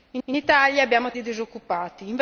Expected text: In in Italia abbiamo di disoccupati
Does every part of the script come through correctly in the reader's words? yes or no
yes